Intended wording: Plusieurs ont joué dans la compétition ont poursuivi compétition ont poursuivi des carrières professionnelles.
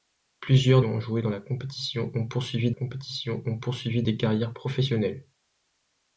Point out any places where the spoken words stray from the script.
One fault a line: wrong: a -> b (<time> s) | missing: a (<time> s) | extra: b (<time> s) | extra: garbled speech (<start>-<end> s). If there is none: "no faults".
no faults